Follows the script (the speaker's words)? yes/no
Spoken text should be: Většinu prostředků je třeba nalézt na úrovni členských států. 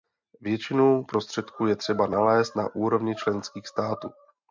yes